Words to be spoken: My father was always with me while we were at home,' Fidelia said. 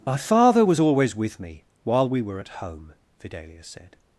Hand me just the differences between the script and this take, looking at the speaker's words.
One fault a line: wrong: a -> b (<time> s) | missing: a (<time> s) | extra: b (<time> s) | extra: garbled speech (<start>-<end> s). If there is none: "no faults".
no faults